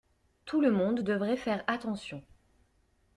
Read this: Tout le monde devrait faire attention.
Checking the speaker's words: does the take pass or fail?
pass